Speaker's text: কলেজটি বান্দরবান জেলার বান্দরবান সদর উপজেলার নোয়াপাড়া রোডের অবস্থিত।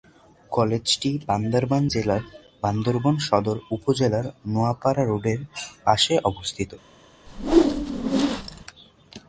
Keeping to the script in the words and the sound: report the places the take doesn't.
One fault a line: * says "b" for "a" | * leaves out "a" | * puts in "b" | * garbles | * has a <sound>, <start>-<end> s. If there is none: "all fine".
* puts in "পাশে"
* has a whoosh, 7.3-8.6 s